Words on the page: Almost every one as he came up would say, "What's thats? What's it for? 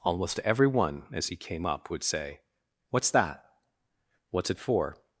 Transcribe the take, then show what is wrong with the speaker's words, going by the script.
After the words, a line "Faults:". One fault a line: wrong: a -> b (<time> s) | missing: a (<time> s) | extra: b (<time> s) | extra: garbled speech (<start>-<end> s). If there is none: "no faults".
Almost every one as he came up would say, "What's that? What's it for?
Faults:
wrong: thats -> that (3.1 s)